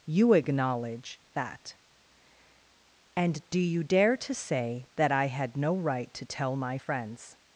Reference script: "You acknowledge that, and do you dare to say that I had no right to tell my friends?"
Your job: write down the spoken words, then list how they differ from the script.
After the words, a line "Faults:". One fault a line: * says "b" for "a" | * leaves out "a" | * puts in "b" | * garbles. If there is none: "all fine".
"You acknowledge that, and do you dare to say that I had no right to tell my friends?"
Faults:
all fine